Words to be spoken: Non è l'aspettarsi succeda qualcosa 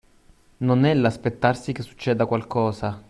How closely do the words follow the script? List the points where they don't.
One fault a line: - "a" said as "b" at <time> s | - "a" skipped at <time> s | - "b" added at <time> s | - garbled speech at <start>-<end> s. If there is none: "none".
- "che" added at 1.7 s